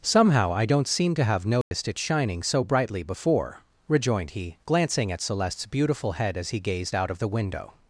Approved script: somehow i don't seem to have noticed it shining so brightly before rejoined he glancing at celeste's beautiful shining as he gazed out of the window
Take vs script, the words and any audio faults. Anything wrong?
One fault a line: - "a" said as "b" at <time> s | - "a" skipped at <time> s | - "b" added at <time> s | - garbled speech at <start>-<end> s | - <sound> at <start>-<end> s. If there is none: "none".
- dropout at 1.6-1.7 s
- "shining" said as "head" at 6.1 s